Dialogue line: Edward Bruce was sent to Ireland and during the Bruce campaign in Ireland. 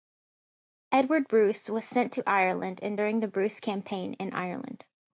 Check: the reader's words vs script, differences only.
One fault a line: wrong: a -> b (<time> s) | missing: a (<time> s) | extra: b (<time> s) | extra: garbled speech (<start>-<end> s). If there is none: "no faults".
no faults